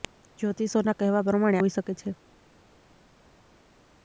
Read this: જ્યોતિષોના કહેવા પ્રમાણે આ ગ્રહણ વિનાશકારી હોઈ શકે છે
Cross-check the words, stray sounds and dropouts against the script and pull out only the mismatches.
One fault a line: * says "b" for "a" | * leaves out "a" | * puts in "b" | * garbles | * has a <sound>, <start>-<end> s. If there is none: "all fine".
* leaves out "આ ગ્રહણ વિનાશકારી"